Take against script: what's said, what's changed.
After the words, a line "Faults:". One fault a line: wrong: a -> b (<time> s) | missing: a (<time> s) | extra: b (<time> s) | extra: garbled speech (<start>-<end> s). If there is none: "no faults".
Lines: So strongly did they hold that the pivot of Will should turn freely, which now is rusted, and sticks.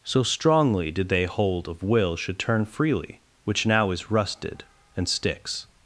So strongly did they hold of Will should turn freely, which now is rusted, and sticks.
Faults:
missing: that the pivot (1.7 s)